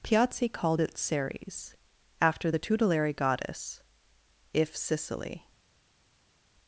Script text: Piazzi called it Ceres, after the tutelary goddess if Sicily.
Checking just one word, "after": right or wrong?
right